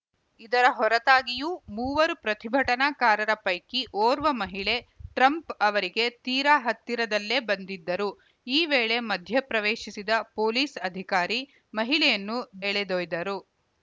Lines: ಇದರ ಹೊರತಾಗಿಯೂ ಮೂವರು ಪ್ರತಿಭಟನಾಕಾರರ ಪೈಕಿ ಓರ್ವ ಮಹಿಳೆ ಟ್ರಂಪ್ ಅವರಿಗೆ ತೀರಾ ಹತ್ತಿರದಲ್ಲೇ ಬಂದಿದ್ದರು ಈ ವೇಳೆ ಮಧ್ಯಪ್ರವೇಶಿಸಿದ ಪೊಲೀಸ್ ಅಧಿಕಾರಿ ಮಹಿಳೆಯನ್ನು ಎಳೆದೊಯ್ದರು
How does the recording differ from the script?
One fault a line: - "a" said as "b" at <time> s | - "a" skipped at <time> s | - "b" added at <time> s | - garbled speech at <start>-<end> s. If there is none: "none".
none